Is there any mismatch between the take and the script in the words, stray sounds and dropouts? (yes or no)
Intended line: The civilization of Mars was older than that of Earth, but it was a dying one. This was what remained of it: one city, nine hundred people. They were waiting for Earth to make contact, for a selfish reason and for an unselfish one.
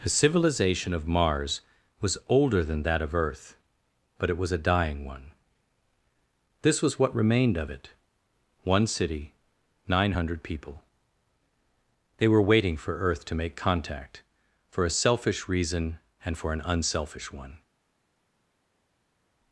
no